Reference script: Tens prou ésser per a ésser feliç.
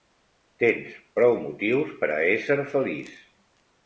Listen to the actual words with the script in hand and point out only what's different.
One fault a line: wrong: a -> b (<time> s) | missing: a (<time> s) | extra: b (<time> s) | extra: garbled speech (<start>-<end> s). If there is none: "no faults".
wrong: ésser -> motius (1.4 s)